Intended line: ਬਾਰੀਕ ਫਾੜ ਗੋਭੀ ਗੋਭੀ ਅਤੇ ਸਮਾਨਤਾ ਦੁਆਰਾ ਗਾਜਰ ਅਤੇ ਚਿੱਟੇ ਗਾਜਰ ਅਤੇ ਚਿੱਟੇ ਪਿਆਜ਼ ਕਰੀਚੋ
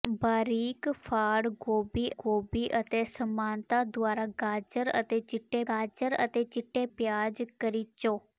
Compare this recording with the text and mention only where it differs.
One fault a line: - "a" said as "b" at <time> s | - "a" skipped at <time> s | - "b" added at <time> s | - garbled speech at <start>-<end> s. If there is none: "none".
none